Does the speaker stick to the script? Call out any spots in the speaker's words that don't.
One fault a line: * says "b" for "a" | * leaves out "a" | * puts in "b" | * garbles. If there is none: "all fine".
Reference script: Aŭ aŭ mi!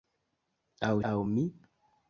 all fine